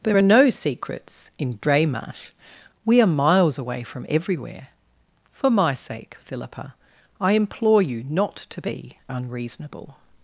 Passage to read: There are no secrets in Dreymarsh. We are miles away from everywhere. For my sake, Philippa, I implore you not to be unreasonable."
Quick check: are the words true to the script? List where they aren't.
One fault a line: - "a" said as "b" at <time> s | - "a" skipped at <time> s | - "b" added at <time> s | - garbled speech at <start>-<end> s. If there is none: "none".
none